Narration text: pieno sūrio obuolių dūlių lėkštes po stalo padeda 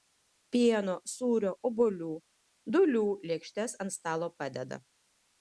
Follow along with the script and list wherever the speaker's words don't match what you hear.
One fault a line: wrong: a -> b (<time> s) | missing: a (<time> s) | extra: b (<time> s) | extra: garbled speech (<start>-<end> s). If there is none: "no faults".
wrong: po -> ant (3.9 s)